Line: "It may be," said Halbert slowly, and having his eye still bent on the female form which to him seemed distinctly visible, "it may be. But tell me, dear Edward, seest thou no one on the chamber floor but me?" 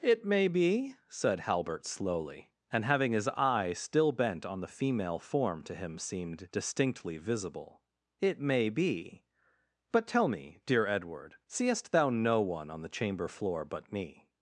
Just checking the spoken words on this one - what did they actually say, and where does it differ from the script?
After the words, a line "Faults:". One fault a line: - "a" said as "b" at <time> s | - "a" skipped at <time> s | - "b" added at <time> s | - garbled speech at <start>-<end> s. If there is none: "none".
"It may be," said Halbert slowly, and having his eye still bent on the female form to him seemed distinctly visible, "it may be. But tell me, dear Edward, seest thou no one on the chamber floor but me?"
Faults:
- "which" skipped at 5.6 s